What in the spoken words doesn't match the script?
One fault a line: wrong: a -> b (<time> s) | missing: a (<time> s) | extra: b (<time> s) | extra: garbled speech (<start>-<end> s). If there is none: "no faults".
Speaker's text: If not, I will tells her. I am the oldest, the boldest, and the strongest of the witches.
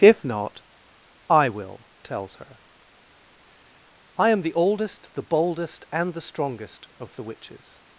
no faults